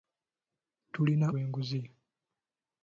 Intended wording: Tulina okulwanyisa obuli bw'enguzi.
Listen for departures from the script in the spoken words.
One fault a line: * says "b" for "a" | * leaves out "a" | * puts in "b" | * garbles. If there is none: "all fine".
* leaves out "okulwanyisa obuli"